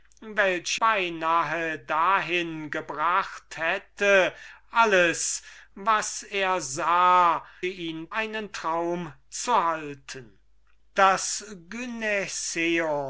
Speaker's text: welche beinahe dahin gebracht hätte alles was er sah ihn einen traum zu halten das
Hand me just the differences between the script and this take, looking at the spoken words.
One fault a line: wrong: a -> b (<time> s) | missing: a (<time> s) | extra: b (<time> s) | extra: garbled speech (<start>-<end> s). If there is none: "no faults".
no faults